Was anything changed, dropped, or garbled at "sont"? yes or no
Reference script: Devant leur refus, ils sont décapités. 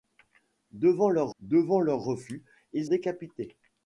yes